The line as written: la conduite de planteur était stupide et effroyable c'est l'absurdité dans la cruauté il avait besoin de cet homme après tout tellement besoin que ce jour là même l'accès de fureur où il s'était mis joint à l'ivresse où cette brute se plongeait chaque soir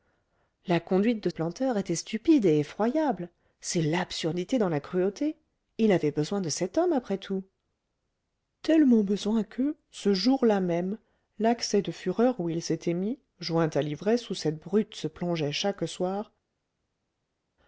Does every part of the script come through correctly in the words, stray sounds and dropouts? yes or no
yes